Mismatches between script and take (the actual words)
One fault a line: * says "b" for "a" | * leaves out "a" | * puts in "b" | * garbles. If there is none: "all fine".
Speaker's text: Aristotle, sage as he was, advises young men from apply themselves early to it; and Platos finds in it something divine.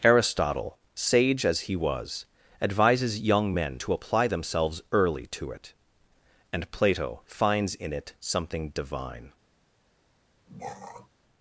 * says "to" for "from"
* says "Plato" for "Platos"